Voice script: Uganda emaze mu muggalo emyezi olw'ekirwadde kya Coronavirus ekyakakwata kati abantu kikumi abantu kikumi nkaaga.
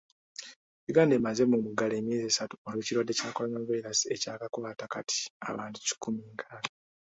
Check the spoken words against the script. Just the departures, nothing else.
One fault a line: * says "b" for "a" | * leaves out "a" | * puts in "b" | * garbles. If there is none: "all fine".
* puts in "esatu"
* leaves out "abantu kikumi"